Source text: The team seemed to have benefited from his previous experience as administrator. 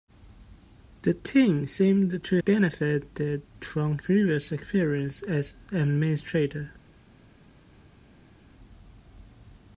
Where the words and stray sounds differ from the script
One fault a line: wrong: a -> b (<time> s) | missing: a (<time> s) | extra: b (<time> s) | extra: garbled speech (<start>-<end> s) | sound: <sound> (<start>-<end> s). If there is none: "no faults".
missing: have (2.4 s)
missing: his (4.0 s)